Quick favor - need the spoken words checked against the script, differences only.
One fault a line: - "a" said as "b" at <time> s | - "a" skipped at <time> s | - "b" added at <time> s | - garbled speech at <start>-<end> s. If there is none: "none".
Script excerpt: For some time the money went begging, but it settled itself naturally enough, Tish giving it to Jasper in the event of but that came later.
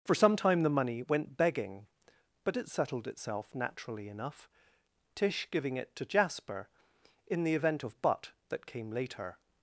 none